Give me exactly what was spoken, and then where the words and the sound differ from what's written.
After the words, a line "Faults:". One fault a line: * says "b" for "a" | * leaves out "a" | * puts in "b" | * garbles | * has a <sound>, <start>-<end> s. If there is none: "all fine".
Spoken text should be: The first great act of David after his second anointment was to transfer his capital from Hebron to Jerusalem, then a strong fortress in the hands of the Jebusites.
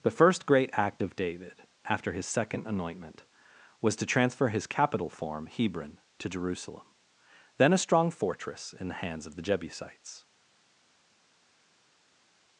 The first great act of David after his second anointment was to transfer his capital form Hebron to Jerusalem, then a strong fortress in the hands of the Jebusites.
Faults:
* says "form" for "from"